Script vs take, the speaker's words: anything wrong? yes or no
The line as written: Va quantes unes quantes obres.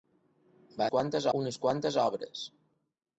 no